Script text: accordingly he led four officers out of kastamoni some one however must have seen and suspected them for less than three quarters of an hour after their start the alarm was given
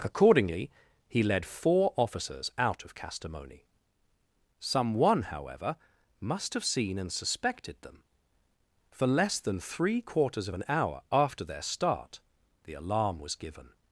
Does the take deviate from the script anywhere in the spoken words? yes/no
no